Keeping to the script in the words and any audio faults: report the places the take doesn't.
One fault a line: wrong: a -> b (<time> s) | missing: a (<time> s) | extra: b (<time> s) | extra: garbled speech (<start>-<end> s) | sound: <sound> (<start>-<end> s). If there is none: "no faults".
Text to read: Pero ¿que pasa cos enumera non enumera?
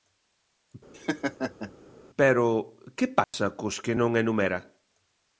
sound: laugh (0.9-1.7 s)
sound: dropout (3.2-3.3 s)
wrong: enumera -> que (3.8 s)